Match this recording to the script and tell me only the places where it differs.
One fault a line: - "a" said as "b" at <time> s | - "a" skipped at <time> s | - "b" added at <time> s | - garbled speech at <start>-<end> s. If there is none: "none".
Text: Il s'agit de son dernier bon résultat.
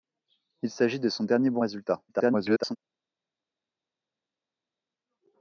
- garbled speech at 2.1-2.8 s